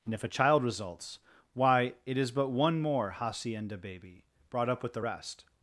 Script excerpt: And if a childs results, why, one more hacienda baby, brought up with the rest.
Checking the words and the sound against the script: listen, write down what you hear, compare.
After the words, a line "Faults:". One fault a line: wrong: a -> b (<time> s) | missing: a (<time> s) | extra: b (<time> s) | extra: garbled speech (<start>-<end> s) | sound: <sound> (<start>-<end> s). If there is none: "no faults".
And if a child results, why, it is but one more hacienda baby, brought up with the rest.
Faults:
wrong: childs -> child (0.3 s)
extra: it is but (2.0 s)